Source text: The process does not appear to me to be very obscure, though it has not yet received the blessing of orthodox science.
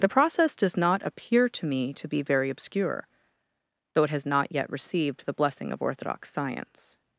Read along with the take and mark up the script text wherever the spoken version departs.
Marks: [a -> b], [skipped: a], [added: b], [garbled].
The process does not appear to me to be very obscure, though it has not yet received the blessing of orthodox science.